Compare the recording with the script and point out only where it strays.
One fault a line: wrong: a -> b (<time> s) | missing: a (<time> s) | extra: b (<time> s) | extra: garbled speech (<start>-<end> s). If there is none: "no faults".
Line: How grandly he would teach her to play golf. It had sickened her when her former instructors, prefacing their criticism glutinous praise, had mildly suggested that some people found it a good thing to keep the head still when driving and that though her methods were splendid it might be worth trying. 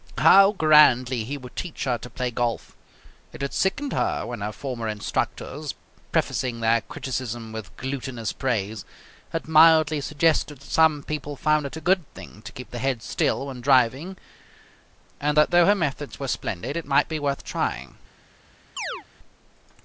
extra: with (7.5 s)